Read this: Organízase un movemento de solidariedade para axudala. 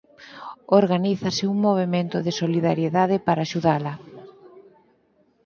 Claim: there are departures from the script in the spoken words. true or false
false